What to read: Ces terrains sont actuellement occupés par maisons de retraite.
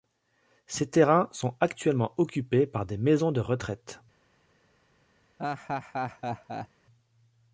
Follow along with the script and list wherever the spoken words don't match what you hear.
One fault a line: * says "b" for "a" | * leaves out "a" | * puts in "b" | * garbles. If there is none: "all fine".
* puts in "des"